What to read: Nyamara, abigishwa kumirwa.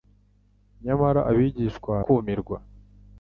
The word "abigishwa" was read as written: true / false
true